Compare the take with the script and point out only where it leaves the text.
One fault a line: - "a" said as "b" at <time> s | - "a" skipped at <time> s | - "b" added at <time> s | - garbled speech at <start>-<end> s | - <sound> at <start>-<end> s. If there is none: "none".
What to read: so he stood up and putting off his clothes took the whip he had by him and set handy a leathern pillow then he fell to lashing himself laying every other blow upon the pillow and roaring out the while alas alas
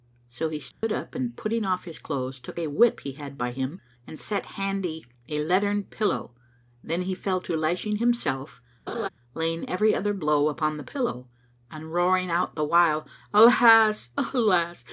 - dropout at 0.7-0.8 s
- "the" said as "a" at 2.6 s
- laugh at 8.9-9.1 s